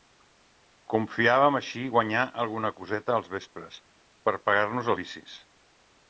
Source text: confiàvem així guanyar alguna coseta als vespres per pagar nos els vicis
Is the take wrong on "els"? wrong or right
wrong